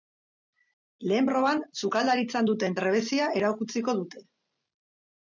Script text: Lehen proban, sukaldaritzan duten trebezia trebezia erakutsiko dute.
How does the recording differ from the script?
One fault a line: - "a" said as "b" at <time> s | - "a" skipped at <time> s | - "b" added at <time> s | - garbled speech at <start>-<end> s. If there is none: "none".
- "trebezia" skipped at 3.3 s